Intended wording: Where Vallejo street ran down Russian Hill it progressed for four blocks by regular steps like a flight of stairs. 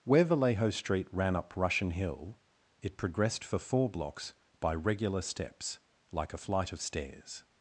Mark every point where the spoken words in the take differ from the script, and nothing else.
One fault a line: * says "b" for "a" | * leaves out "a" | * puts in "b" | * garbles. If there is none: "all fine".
* says "up" for "down"